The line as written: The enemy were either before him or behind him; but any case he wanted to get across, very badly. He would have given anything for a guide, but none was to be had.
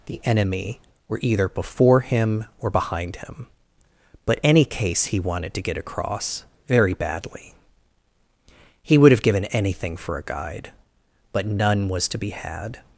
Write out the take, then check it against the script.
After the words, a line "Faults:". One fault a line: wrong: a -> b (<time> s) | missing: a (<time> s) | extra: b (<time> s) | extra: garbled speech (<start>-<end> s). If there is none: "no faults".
The enemy were either before him or behind him; but any case he wanted to get across, very badly. He would have given anything for a guide, but none was to be had.
Faults:
no faults